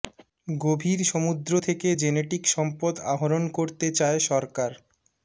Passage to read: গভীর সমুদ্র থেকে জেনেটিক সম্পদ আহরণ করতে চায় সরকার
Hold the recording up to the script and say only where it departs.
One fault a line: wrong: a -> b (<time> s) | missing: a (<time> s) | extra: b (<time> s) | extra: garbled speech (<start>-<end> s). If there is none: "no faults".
no faults